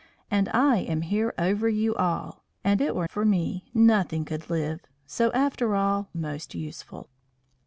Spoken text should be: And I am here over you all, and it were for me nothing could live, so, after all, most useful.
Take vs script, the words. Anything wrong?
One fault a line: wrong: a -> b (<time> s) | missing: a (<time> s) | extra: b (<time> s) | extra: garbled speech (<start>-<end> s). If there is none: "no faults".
no faults